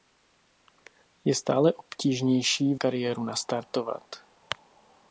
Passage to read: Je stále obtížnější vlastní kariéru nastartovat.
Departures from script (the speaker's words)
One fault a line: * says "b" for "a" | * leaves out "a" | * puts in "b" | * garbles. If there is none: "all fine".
* leaves out "vlastní"